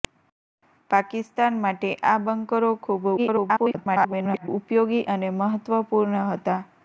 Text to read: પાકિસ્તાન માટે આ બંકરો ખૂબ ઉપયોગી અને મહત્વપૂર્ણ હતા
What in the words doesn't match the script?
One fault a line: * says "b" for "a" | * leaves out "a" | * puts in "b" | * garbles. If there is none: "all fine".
* garbles